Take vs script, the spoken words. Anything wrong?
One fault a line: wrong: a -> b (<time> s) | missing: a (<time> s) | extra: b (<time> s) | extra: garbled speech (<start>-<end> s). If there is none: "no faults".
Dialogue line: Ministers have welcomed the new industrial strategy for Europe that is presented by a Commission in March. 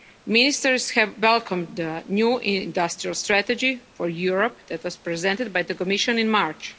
wrong: is -> was (4.8 s)
wrong: a -> the (5.6 s)